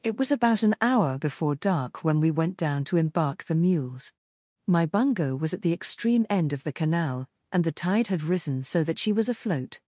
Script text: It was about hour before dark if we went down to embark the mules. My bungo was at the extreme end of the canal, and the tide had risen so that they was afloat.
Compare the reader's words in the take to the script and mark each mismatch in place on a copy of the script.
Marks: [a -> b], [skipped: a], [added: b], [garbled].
It was about [added: an] hour before dark [if -> when] we went down to embark the mules. My bungo was at the extreme end of the canal, and the tide had risen so that [they -> she] was afloat.